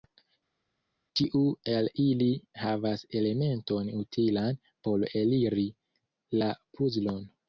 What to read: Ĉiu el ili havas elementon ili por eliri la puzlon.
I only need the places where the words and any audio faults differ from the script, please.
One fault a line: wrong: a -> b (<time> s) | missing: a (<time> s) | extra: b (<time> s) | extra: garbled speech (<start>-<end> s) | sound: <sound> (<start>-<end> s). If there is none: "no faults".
wrong: ili -> utilan (4.0 s)